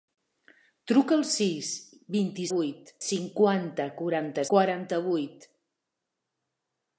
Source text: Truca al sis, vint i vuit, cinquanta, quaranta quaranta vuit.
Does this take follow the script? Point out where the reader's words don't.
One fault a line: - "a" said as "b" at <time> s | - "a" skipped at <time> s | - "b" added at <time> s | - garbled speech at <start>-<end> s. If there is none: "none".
none